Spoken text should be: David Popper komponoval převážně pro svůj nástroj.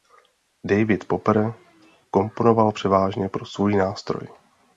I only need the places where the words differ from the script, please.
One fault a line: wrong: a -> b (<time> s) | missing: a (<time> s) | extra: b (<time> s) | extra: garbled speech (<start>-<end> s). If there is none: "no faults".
no faults